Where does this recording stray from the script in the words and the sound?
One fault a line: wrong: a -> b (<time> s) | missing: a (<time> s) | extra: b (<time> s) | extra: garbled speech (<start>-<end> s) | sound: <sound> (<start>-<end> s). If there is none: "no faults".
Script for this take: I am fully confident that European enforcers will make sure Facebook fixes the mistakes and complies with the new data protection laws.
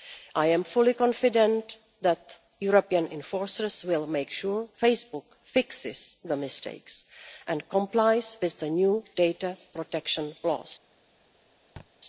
sound: thud (11.8-11.9 s)